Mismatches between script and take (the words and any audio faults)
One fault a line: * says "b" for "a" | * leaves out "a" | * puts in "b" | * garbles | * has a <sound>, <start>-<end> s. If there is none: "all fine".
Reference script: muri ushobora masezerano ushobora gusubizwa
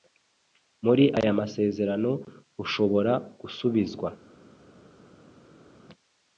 * says "aya" for "ushobora"